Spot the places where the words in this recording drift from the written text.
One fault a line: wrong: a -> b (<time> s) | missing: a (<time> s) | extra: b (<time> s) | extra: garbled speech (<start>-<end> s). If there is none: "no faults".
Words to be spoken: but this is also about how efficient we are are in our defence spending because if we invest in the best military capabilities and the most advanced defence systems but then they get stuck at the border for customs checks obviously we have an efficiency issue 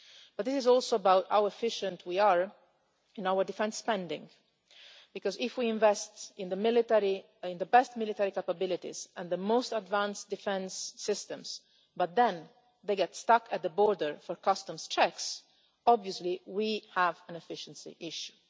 missing: are (2.5 s)